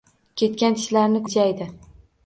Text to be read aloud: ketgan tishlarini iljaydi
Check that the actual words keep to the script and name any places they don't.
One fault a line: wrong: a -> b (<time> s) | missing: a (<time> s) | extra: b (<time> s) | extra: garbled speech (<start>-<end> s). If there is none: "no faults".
no faults